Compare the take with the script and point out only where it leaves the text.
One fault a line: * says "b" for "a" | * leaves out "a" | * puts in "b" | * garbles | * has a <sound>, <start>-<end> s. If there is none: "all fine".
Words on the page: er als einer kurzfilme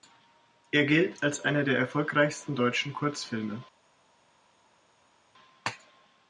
* puts in "gilt"
* puts in "der erfolgreichsten deutschen"